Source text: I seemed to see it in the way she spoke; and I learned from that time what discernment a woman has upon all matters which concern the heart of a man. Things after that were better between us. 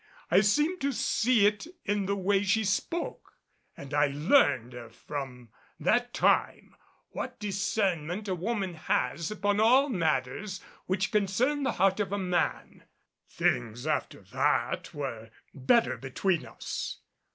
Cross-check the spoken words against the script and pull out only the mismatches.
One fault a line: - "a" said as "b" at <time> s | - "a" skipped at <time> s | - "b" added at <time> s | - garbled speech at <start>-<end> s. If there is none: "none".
none